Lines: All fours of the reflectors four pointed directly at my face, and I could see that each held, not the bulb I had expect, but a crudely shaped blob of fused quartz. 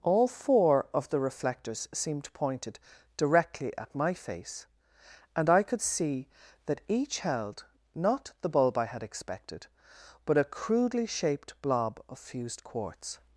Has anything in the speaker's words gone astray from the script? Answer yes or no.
yes